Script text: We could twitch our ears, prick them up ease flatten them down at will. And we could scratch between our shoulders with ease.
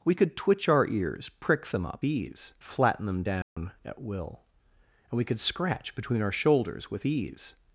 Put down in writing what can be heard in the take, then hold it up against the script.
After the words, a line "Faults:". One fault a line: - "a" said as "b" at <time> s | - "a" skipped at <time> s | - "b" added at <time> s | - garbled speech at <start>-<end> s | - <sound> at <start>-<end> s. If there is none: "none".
We could twitch our ears, prick them up ease flatten them down at will. And we could scratch between our shoulders with ease.
Faults:
- dropout at 3.4-3.6 s